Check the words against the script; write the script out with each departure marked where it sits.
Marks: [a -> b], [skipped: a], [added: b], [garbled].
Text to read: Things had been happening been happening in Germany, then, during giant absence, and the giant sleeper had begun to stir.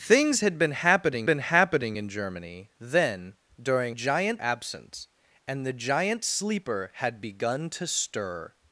Things had been happening been happening in Germany, then, during giant absence, and the giant sleeper had begun to stir.